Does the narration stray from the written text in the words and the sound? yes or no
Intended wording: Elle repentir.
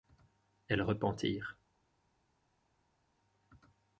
no